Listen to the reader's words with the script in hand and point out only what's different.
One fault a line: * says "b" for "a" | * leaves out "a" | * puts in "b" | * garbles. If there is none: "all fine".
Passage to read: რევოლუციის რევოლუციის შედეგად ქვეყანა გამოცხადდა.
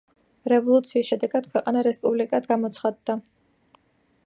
* leaves out "რევოლუციის"
* puts in "რესპუბლიკად"